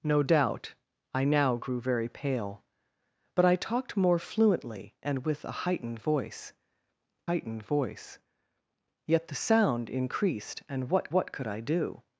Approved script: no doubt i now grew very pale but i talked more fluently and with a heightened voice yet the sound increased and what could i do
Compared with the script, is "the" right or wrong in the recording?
right